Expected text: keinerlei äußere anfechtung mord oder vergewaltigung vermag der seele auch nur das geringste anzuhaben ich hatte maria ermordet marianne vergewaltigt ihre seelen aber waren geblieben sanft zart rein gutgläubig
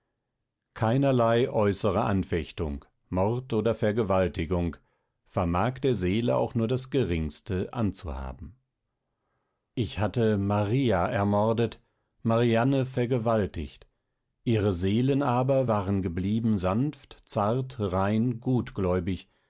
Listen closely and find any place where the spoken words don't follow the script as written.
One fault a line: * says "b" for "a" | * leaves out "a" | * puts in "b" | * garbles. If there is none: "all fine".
all fine